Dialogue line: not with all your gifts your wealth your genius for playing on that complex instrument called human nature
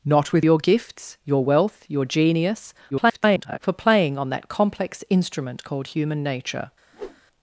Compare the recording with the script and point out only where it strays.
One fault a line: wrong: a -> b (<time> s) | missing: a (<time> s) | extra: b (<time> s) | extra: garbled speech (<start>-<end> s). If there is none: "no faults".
missing: all (0.5 s)
extra: garbled speech (2.9-3.6 s)